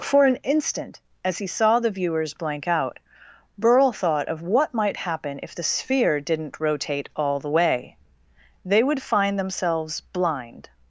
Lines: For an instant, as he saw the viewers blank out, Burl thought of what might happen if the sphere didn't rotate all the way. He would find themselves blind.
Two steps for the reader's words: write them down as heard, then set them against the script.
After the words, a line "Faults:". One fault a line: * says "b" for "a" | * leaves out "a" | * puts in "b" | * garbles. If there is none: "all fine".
For an instant, as he saw the viewers blank out, Burl thought of what might happen if the sphere didn't rotate all the way. They would find themselves blind.
Faults:
* says "They" for "He"